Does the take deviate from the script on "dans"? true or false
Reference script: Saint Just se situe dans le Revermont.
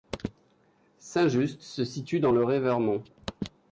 false